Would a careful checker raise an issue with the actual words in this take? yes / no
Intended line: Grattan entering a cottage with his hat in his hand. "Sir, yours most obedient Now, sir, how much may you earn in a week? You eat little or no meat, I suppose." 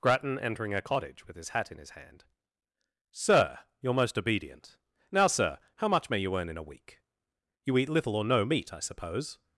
yes